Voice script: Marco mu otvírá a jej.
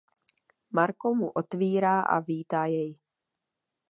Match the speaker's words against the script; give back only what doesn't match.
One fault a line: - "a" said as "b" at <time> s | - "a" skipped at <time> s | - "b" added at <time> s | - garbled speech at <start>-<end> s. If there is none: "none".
- "vítá" added at 2.3 s